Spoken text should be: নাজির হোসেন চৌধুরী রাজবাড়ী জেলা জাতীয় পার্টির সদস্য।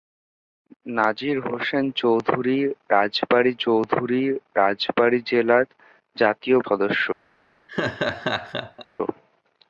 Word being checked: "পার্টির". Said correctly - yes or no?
no